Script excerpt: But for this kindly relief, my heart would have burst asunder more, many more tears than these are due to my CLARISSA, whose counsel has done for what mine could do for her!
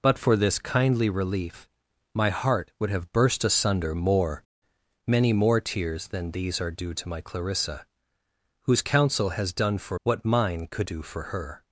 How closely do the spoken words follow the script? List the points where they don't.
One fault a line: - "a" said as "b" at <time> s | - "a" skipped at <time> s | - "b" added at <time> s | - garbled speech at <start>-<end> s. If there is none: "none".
none